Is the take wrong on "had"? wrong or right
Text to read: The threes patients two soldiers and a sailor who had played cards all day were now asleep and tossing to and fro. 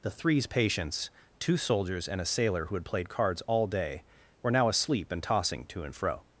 right